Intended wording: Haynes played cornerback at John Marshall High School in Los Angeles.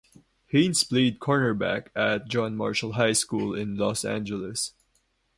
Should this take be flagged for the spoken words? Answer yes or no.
no